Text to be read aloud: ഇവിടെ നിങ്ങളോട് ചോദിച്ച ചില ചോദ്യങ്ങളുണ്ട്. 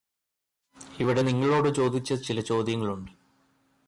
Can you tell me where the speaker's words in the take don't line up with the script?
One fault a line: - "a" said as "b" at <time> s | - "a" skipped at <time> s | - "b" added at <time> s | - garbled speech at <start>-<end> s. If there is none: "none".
none